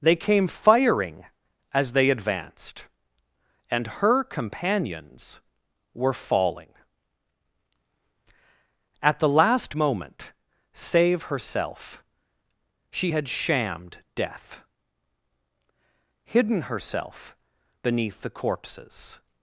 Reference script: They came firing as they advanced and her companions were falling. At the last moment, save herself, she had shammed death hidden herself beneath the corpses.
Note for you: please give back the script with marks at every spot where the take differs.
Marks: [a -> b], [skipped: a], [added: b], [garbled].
They came firing as they advanced and her companions were falling. At the last moment, save herself, she had shammed death hidden herself beneath the corpses.